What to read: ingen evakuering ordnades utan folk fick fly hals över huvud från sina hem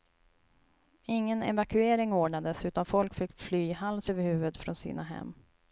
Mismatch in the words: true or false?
false